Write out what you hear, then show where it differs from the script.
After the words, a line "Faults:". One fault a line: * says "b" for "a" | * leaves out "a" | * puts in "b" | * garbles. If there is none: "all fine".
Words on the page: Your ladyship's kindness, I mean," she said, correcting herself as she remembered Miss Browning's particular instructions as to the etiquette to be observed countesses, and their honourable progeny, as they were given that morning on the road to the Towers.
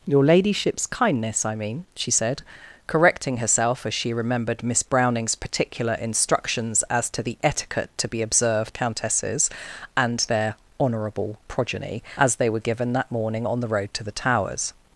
Your ladyship's kindness, I mean," she said, correcting herself as she remembered Miss Browning's particular instructions as to the etiquette to be observed countesses, and their honourable progeny, as they were given that morning on the road to the Towers.
Faults:
all fine